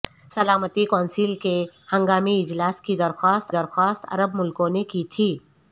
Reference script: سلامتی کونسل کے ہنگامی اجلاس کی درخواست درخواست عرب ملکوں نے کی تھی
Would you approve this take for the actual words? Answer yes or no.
yes